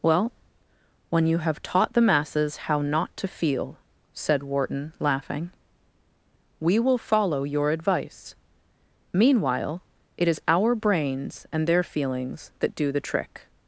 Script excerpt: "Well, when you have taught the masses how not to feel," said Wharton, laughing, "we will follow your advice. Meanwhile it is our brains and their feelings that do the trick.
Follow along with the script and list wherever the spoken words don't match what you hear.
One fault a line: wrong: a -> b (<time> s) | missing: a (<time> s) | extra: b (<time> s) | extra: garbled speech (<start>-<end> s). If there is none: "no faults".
no faults